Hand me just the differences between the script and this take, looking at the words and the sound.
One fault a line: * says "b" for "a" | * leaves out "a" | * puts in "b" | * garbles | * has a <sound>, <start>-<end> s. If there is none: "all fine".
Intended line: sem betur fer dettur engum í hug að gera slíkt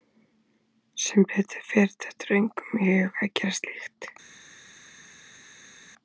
all fine